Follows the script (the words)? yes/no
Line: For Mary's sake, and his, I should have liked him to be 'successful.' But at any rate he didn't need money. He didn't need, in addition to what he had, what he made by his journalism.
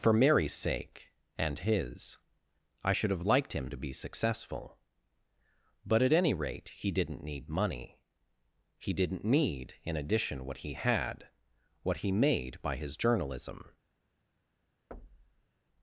no